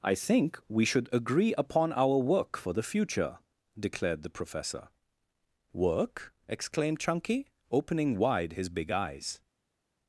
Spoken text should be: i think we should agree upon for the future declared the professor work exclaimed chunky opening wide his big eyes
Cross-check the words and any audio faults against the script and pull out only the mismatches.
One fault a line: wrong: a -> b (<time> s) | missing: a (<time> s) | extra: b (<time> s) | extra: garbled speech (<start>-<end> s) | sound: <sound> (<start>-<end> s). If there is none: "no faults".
extra: our work (1.9 s)